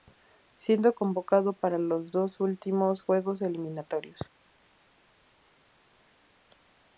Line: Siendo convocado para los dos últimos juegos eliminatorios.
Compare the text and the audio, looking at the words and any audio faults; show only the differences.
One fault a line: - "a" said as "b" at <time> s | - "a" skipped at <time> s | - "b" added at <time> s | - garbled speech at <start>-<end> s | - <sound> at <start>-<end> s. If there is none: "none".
none